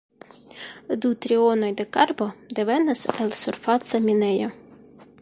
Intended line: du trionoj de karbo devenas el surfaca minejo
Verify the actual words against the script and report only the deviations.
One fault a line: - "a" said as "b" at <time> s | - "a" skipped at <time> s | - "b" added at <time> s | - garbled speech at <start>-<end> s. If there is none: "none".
none